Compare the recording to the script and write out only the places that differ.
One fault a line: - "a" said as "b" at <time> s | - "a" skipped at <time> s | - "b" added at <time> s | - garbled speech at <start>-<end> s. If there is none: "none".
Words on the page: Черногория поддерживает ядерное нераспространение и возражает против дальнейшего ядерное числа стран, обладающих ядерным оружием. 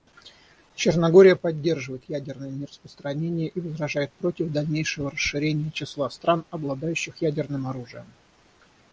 - "ядерное" said as "расширения" at 5.1 s